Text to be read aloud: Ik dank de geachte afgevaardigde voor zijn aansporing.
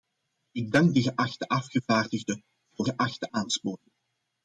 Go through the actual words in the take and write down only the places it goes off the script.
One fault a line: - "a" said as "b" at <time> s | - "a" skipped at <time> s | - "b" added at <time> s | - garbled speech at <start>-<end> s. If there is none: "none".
- "zijn" said as "geachte" at 2.8 s